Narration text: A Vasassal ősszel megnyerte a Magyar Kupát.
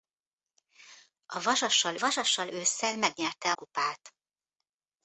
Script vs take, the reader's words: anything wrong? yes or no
yes